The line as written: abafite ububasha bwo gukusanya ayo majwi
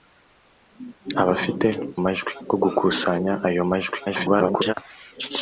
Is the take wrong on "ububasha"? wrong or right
wrong